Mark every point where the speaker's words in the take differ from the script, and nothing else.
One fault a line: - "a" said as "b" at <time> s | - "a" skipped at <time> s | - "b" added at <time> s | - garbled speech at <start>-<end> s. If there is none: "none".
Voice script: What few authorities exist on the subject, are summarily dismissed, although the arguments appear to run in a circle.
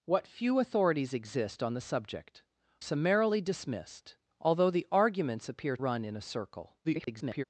- "are" skipped at 2.4 s
- "to" skipped at 5.7 s
- garbled speech at 6.8-7.4 s